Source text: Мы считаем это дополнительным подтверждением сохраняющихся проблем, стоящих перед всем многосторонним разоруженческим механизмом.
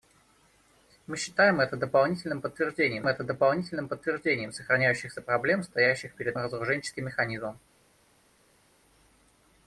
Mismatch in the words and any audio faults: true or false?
true